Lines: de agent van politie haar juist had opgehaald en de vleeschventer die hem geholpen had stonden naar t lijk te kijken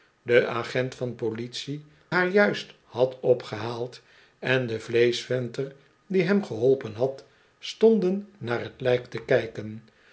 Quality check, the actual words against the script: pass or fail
pass